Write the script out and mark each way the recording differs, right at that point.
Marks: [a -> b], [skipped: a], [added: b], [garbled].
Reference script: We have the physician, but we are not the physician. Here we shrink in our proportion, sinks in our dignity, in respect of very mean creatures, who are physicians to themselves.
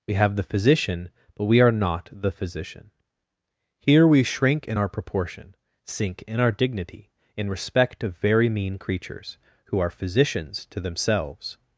We have the physician, but we are not the physician. Here we shrink in our proportion, [sinks -> sink] in our dignity, in respect of very mean creatures, who are physicians to themselves.